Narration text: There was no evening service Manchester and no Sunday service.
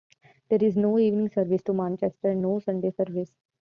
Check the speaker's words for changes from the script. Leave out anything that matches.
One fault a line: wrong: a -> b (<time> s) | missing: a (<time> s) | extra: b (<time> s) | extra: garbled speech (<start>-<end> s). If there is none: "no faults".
wrong: was -> is (0.6 s)
extra: to (1.6 s)